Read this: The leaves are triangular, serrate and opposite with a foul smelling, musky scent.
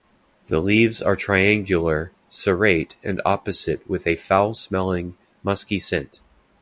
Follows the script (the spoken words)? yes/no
yes